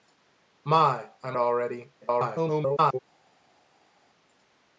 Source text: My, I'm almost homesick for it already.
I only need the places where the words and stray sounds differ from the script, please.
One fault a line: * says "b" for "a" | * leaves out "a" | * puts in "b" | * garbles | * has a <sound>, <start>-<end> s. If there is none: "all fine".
* leaves out "almost homesick for"
* garbles